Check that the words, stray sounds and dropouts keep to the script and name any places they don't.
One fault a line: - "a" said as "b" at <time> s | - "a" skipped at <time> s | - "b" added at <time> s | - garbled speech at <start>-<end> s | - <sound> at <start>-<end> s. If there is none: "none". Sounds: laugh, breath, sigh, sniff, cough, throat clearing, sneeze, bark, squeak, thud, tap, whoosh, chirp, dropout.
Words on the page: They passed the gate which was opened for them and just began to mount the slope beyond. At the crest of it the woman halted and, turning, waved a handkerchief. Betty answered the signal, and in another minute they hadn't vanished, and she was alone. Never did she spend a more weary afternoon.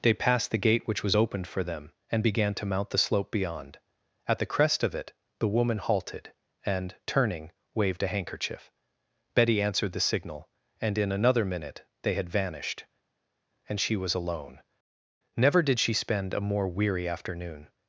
- "just" skipped at 2.2 s
- "hadn't" said as "had" at 12.1 s